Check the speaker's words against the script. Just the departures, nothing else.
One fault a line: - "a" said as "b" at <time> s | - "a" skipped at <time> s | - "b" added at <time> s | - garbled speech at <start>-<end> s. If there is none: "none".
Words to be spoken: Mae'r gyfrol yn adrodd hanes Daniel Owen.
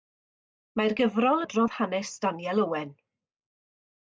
- "yn" skipped at 1.4 s